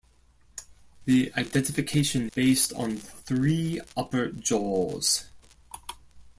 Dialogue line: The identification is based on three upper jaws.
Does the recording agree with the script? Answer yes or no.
no